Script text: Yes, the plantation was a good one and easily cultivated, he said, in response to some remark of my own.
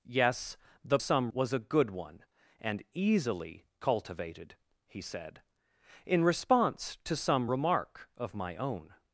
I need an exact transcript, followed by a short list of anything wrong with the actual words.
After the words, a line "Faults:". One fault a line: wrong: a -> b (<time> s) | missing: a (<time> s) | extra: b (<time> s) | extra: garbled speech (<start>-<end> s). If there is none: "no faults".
Yes, the some was a good one and easily cultivated, he said, in response to some remark of my own.
Faults:
wrong: plantation -> some (1.0 s)